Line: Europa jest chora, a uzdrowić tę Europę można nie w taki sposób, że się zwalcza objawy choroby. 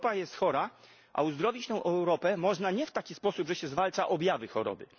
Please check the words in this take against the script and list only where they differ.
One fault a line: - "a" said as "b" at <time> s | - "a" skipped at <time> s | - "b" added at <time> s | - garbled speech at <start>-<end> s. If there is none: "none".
none